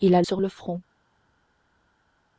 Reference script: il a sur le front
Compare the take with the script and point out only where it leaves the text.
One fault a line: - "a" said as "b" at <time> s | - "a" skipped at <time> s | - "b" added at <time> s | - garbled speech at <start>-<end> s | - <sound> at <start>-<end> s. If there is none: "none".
none